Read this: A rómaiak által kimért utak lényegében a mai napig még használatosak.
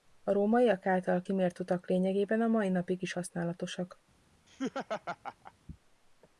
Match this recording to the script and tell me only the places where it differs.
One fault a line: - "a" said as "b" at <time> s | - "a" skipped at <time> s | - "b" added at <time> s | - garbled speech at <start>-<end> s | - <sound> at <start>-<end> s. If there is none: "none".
- "még" said as "is" at 3.0 s
- laugh at 4.5-5.5 s